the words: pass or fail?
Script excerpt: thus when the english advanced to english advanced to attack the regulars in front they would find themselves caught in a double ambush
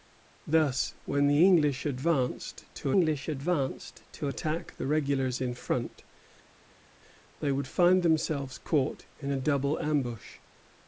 pass